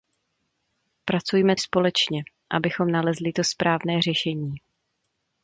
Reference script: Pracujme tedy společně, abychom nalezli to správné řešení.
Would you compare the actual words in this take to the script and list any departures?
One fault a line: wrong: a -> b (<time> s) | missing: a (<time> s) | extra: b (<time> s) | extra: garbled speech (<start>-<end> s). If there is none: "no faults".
missing: tedy (1.6 s)